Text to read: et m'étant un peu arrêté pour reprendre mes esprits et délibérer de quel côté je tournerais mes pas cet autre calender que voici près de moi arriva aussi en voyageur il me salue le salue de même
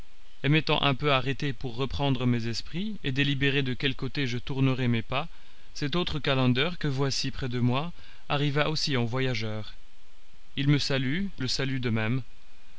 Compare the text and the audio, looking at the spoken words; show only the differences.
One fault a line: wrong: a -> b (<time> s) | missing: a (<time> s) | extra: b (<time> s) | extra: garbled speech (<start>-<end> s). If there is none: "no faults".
no faults